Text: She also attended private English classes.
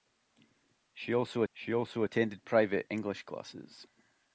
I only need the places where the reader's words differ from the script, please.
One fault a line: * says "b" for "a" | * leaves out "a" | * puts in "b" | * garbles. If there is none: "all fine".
* puts in "she also"